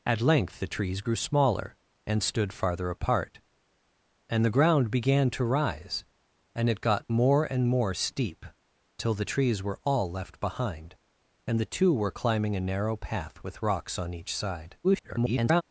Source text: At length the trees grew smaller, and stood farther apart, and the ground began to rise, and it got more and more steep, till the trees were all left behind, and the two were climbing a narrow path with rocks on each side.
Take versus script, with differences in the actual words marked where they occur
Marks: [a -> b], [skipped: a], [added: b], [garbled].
At length the trees grew smaller, and stood farther apart, and the ground began to rise, and it got more and more steep, till the trees were all left behind, and the two were climbing a narrow path with rocks on each side. [garbled]